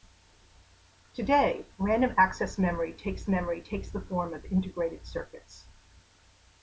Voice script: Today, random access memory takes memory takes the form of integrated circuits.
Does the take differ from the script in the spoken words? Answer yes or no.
no